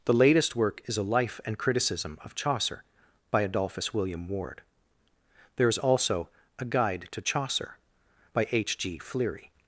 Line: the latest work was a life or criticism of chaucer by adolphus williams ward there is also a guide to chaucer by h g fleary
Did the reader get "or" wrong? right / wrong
wrong